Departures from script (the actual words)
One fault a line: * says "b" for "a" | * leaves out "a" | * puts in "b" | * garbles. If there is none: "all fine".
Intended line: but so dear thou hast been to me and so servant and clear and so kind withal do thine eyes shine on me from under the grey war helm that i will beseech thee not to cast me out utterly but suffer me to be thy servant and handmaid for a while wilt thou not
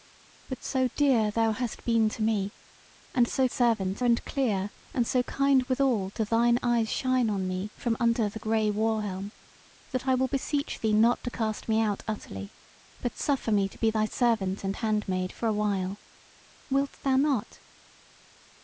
all fine